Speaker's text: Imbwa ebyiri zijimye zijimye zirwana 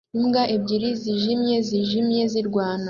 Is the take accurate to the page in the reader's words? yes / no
yes